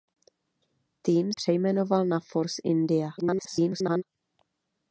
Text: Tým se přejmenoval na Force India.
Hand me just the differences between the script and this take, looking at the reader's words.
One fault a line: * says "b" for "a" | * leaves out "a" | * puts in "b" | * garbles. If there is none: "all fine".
* leaves out "se"
* garbles